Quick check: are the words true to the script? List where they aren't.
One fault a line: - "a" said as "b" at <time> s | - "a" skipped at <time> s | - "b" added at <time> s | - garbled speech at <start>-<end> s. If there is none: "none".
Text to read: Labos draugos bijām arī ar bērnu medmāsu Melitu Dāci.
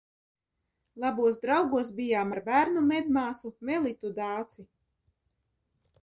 - "arī" skipped at 2.3 s